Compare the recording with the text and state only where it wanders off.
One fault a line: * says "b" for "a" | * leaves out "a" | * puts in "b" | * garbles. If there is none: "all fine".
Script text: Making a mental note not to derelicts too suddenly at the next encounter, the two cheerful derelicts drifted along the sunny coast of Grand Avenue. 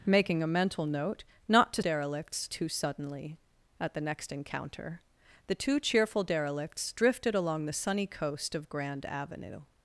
all fine